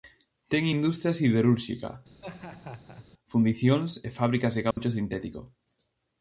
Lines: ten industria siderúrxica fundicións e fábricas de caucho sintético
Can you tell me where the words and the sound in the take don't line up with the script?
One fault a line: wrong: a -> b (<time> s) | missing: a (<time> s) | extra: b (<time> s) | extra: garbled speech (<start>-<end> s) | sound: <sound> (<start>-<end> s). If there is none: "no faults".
sound: laugh (2.2-3.1 s)
sound: dropout (4.7-4.8 s)